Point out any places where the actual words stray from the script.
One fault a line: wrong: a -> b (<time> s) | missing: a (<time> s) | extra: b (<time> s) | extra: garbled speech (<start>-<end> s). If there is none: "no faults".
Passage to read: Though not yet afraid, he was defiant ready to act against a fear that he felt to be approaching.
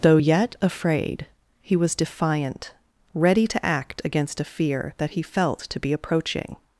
missing: not (0.2 s)